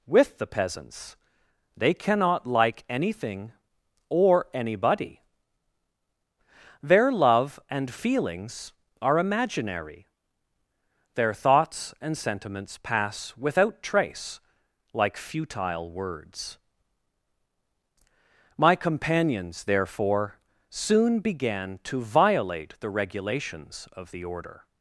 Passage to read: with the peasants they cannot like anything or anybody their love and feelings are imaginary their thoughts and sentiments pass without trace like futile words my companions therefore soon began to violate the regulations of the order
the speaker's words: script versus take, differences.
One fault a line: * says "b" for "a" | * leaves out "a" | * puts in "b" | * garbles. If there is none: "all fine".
all fine